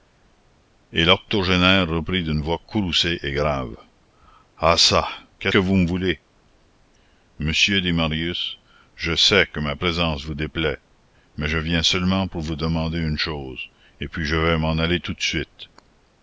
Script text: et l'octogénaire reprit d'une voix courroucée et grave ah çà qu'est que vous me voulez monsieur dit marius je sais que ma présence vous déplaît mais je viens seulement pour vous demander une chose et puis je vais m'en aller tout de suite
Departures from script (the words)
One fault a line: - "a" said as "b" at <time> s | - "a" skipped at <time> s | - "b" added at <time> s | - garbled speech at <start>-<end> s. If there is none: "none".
none